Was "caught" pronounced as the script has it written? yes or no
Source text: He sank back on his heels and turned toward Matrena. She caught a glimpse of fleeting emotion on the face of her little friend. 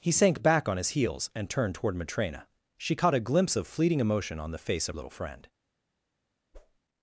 yes